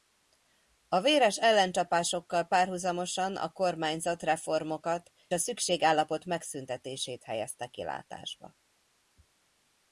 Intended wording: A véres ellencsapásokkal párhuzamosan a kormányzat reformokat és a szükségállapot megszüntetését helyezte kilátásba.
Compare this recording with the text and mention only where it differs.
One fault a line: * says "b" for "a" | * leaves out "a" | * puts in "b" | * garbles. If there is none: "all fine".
* leaves out "és"